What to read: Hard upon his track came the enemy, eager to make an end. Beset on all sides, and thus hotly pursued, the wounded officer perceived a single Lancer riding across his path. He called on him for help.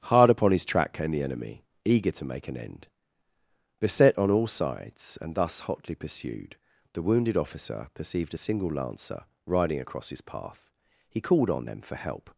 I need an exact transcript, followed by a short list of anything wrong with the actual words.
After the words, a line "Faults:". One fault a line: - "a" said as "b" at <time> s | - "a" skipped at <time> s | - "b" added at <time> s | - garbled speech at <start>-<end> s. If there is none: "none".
Hard upon his track came the enemy, eager to make an end. Beset on all sides, and thus hotly pursued, the wounded officer perceived a single Lancer riding across his path. He called on them for help.
Faults:
- "him" said as "them" at 11.6 s